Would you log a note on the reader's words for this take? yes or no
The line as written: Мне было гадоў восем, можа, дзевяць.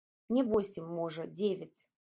yes